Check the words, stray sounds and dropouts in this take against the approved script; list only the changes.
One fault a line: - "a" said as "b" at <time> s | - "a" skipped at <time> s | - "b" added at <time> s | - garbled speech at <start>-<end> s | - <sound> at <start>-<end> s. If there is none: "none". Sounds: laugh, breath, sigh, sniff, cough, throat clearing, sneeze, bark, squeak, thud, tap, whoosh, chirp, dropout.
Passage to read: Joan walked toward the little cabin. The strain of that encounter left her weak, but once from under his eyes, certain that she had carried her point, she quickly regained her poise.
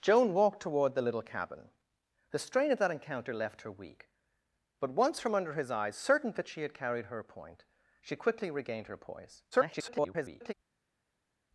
- garbled speech at 9.5-10.5 s